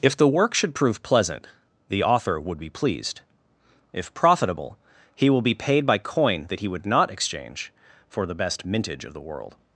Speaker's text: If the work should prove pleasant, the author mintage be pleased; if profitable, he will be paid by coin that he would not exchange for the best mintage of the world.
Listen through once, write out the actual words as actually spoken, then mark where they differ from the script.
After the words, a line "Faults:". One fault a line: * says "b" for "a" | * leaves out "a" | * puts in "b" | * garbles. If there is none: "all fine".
If the work should prove pleasant, the author would be pleased; if profitable, he will be paid by coin that he would not exchange for the best mintage of the world.
Faults:
* says "would" for "mintage"